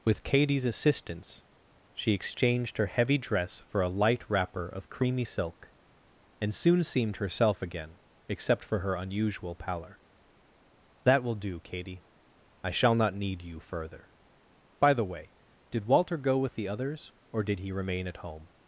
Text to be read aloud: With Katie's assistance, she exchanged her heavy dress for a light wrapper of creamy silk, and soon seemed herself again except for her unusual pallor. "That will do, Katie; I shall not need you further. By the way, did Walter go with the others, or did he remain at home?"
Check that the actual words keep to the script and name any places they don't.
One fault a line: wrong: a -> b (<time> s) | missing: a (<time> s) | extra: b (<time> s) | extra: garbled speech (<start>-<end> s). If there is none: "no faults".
no faults